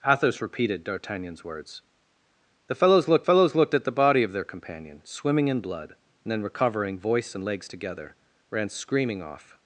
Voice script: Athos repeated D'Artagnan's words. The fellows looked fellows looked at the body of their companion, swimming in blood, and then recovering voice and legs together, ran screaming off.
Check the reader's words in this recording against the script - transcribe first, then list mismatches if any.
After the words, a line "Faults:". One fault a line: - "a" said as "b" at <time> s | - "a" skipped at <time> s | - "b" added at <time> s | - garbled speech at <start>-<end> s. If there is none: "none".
Athos repeated D'Artagnan's words. The fellows looked fellows looked at the body of their companion, swimming in blood, and then recovering voice and legs together, ran screaming off.
Faults:
none